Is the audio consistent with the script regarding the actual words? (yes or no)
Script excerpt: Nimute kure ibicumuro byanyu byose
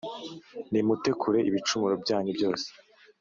yes